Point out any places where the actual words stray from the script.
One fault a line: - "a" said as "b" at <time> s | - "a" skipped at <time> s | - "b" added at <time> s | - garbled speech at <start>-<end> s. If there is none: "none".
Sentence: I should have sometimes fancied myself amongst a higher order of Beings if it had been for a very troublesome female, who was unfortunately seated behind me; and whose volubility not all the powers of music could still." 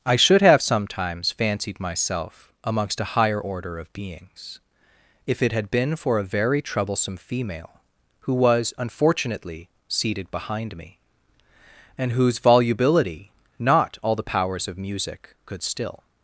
none